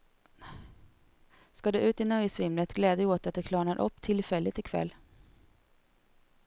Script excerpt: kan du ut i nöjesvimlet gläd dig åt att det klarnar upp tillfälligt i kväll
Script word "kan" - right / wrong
wrong